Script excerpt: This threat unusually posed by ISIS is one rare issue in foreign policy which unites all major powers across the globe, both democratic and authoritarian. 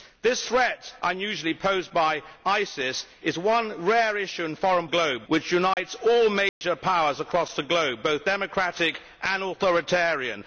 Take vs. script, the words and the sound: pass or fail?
fail